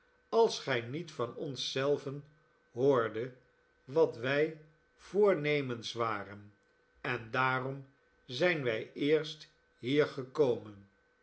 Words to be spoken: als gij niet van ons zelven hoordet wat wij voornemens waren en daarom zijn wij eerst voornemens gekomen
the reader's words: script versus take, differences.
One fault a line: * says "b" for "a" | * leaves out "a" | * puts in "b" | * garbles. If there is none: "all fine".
* says "hier" for "voornemens"